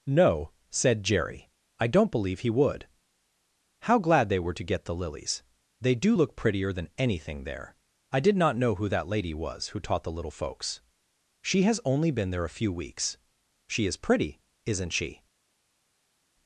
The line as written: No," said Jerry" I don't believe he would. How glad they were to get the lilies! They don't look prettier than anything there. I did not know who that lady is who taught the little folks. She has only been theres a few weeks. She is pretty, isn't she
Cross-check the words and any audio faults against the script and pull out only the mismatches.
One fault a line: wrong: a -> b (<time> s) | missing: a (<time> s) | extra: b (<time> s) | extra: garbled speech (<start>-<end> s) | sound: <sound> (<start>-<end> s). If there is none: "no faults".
wrong: don't -> do (5.9 s)
wrong: is -> was (9.3 s)
wrong: theres -> there (12.3 s)